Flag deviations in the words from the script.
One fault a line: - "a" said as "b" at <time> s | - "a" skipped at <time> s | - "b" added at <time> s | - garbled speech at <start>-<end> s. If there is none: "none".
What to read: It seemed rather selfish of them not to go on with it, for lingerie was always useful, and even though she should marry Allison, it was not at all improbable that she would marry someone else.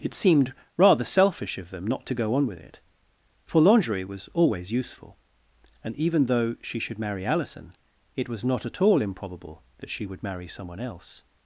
none